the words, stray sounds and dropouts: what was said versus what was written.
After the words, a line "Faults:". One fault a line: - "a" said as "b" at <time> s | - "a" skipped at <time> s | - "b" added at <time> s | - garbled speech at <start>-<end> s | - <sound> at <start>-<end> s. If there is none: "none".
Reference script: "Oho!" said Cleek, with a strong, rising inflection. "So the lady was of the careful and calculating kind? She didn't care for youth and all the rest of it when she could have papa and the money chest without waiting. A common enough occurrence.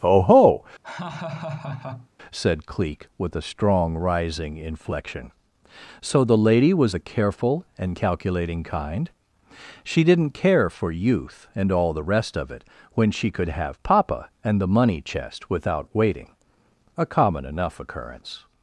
"Oho!" said Cleek, with a strong, rising inflection. "So the lady was the careful and calculating kind? She didn't care for youth and all the rest of it when she could have papa and the money chest without waiting. A common enough occurrence.
Faults:
- laugh at 0.8-2.1 s
- "of" skipped at 7.0 s